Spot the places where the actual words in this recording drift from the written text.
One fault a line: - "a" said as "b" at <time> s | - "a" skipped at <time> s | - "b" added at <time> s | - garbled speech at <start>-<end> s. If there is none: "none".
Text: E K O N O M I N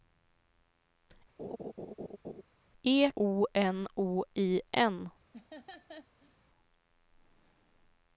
- "K" skipped at 3.1 s
- "M" skipped at 4.2 s